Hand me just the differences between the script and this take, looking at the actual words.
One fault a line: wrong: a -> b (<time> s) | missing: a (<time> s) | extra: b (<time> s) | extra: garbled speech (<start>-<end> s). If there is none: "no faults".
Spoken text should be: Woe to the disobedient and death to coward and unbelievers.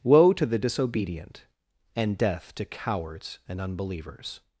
wrong: coward -> cowards (2.6 s)